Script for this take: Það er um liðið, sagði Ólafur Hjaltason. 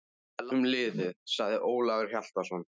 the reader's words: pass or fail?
pass